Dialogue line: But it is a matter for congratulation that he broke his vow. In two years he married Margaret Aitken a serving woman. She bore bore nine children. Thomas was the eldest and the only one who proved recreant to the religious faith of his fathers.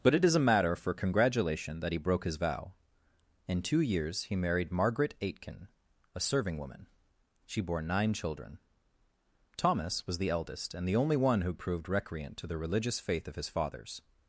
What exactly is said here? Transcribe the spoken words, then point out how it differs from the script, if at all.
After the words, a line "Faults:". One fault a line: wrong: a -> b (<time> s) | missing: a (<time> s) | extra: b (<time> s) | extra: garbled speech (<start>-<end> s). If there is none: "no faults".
But it is a matter for congratulation that he broke his vow. In two years he married Margaret Aitken a serving woman. She bore nine children. Thomas was the eldest and the only one who proved recreant to the religious faith of his fathers.
Faults:
missing: bore (7.8 s)